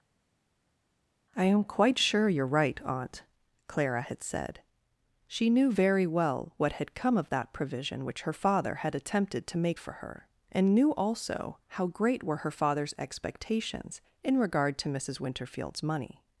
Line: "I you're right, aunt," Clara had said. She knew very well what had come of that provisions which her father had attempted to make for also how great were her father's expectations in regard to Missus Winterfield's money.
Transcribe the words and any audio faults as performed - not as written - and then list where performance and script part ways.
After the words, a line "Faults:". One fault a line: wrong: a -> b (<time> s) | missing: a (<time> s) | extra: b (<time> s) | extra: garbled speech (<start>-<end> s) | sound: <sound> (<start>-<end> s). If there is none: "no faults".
"I am quite sure you're right, aunt," Clara had said. She knew very well what had come of that provision which her father had attempted to make for her, and knew also how great were her father's expectations in regard to Missus Winterfield's money.
Faults:
extra: am quite sure (1.4 s)
wrong: provisions -> provision (7.5 s)
extra: her and knew (9.9 s)